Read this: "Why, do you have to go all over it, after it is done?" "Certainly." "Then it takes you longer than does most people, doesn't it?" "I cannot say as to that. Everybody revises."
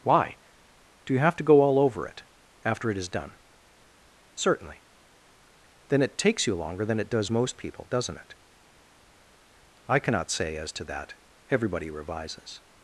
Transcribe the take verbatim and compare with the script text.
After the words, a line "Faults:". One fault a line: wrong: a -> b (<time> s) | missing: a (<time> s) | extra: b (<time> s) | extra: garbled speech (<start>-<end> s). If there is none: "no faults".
"Why, do you have to go all over it, after it is done?" "Certainly." "Then it takes you longer than it does most people, doesn't it?" "I cannot say as to that. Everybody revises."
Faults:
extra: it (7.0 s)